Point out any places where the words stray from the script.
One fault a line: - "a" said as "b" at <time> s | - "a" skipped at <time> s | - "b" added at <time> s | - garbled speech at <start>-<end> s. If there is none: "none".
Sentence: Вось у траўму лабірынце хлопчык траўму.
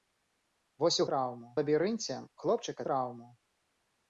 none